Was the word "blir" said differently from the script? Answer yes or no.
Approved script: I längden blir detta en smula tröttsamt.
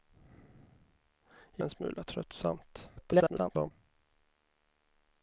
yes